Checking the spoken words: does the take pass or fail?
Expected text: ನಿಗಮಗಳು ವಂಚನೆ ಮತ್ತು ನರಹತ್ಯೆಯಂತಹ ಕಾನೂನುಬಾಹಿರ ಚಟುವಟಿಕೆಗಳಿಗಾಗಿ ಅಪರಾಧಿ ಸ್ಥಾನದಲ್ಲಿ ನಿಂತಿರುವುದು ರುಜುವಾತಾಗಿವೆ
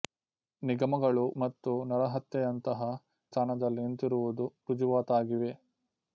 fail